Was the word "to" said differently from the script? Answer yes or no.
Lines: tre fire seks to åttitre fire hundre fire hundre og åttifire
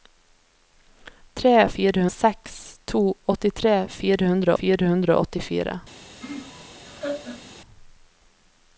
no